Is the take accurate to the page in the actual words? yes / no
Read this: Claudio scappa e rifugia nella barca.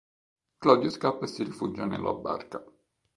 no